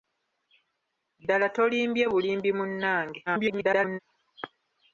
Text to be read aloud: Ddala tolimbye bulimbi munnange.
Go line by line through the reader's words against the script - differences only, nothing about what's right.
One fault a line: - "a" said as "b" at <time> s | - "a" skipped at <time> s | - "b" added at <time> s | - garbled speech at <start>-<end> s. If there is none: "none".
- garbled speech at 3.3-4.0 s